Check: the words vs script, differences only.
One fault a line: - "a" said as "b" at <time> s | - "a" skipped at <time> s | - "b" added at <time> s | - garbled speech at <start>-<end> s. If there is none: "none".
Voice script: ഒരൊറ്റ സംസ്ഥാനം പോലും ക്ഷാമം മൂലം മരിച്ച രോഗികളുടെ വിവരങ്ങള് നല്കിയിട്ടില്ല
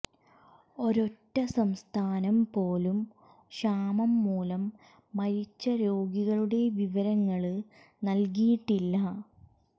none